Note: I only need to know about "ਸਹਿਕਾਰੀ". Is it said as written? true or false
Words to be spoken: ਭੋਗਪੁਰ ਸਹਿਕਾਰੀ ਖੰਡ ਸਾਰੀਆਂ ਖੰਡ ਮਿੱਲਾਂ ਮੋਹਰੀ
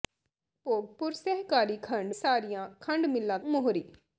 true